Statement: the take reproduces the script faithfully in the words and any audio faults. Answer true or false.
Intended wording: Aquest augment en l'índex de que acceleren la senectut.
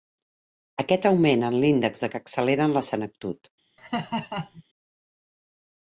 false